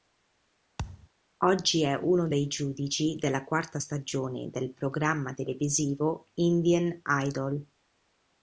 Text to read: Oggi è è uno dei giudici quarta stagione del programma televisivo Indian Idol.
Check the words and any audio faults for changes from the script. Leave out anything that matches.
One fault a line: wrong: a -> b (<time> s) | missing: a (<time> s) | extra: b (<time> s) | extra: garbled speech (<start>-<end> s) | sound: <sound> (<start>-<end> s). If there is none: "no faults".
sound: thud (0.8-1.1 s)
missing: è (2.0 s)
extra: della (3.2 s)